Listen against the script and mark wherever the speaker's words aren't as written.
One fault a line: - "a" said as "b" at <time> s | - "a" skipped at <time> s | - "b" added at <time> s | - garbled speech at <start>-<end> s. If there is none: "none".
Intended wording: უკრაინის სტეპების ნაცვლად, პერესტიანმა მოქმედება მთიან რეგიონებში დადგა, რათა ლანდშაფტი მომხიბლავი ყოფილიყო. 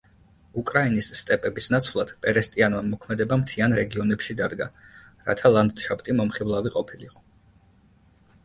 none